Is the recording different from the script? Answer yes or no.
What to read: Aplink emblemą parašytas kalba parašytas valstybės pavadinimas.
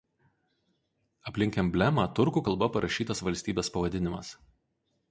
yes